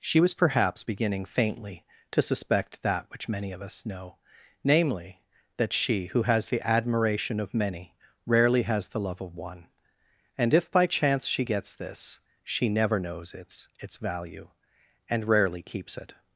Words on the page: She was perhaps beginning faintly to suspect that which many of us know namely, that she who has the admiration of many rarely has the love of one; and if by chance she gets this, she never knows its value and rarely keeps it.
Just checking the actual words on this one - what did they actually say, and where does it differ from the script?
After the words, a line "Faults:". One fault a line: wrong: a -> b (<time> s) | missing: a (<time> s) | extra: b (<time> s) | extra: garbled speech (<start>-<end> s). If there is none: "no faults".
She was perhaps beginning faintly to suspect that which many of us know namely, that she who has the admiration of many rarely has the love of one; and if by chance she gets this, she never knows its its value and rarely keeps it.
Faults:
extra: its (13.8 s)